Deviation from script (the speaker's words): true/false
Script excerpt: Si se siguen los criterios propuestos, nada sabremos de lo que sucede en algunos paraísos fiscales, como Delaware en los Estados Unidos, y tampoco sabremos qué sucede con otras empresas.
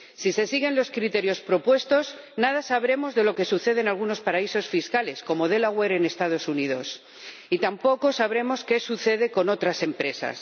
false